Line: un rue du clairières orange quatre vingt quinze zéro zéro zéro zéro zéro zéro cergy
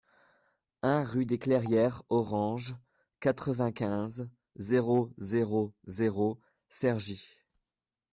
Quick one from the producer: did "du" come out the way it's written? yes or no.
no